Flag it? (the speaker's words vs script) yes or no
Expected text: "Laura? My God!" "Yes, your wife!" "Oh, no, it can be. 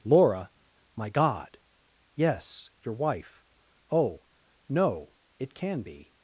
no